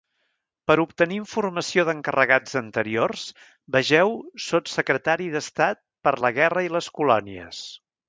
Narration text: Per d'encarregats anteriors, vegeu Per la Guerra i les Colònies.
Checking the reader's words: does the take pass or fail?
fail